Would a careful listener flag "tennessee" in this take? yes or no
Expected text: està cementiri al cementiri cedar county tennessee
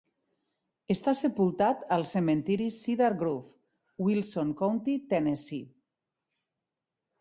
no